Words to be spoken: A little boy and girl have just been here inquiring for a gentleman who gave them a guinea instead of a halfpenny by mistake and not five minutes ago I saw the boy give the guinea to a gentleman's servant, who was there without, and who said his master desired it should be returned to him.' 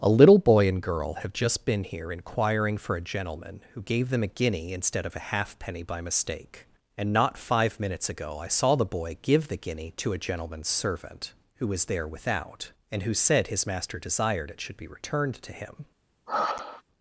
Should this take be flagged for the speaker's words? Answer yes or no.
no